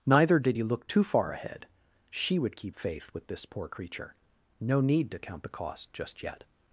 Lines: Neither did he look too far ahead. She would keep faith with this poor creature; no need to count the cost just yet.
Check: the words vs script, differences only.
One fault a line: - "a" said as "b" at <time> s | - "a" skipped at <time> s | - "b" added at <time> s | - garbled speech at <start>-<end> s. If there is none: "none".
none